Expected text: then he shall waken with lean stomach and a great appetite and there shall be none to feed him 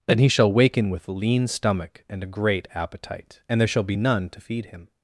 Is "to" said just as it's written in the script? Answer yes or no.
yes